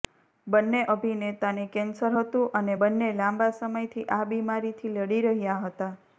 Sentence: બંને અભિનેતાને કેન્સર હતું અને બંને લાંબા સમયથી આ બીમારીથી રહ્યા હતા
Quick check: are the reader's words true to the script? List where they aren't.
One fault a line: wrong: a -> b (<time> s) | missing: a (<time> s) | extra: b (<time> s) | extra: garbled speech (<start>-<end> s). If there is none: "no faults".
extra: લડી (5.0 s)